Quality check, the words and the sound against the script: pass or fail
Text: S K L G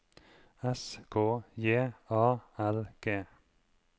fail